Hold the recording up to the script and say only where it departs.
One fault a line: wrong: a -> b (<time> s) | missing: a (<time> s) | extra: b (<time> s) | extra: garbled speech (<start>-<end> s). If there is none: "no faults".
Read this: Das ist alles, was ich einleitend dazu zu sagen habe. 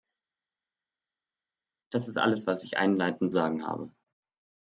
missing: dazu zu (3.3 s)